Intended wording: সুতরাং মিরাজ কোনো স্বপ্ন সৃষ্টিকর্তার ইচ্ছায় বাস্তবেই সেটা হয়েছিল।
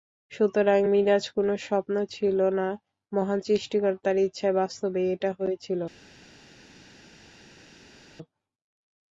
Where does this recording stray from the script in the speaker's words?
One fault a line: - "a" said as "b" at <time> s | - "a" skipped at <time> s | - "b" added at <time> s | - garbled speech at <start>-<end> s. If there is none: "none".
- "ছিল না মহান" added at 2.1 s
- "সেটা" said as "এটা" at 5.1 s